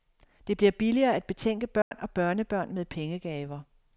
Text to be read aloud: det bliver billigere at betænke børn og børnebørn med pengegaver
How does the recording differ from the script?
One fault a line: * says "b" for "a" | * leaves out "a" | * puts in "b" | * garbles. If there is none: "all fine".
all fine